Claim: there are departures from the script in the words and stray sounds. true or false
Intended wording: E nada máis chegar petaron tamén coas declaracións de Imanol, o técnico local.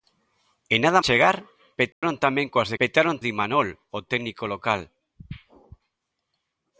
true